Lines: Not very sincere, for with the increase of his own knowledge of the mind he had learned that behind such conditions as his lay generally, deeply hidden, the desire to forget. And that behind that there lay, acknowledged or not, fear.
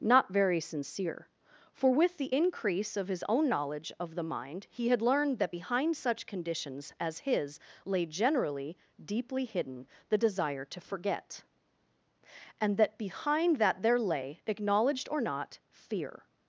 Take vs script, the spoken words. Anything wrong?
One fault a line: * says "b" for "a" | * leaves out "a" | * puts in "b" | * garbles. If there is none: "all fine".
all fine